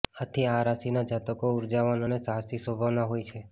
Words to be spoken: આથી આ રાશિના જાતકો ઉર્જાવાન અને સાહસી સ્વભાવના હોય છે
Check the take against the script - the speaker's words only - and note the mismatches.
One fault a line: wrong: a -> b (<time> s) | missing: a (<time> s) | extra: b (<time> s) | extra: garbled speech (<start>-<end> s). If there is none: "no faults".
no faults